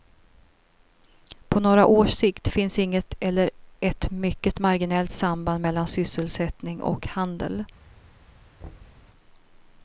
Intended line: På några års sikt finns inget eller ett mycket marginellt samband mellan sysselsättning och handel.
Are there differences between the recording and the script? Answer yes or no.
no